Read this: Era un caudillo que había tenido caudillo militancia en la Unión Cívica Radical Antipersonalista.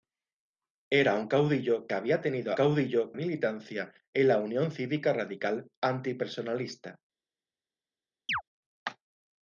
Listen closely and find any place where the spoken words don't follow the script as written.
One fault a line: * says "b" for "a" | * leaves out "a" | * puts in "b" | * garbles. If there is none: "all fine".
all fine